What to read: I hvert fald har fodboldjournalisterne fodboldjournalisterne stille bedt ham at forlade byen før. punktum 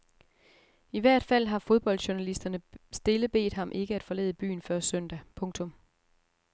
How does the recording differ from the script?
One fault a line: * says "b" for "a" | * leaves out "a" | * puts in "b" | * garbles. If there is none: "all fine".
* leaves out "fodboldjournalisterne"
* puts in "ikke"
* puts in "søndag"